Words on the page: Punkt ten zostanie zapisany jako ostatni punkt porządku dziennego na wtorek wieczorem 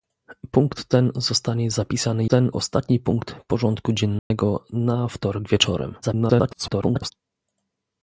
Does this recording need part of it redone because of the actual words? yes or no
yes